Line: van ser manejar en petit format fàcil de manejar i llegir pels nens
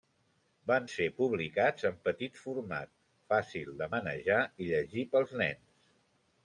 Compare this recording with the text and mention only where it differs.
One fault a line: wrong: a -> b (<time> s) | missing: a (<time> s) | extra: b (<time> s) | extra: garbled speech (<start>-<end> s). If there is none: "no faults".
wrong: manejar -> publicats (1.2 s)